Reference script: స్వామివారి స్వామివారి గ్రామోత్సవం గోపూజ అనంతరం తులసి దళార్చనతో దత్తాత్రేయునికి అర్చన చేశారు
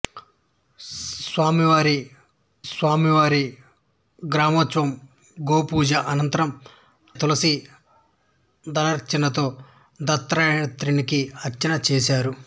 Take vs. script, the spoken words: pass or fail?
pass